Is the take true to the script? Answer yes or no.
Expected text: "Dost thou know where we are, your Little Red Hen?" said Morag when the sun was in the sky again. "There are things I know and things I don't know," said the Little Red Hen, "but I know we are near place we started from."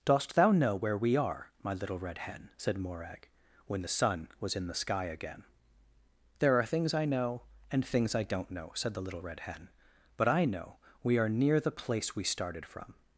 no